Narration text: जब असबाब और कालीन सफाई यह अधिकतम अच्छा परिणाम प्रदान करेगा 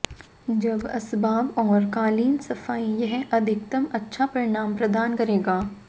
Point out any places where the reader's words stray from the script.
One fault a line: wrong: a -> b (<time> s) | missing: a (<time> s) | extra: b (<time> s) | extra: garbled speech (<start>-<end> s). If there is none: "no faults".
no faults